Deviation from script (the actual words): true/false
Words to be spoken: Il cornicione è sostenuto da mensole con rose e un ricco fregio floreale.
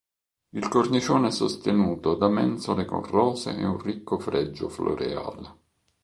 false